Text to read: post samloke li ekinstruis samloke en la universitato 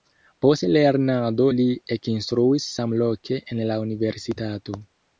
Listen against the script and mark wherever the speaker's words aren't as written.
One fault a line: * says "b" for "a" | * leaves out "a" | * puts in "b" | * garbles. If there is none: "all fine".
* says "lernado" for "samloke"